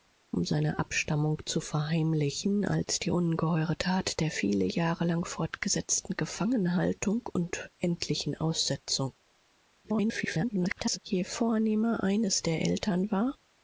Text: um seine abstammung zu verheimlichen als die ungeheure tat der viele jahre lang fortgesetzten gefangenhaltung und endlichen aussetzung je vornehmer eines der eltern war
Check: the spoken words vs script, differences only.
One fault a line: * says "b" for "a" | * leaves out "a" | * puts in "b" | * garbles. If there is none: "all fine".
* garbles